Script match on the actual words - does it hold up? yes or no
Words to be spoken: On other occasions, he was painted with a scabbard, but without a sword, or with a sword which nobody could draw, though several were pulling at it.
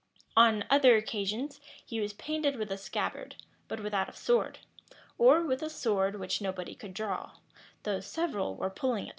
no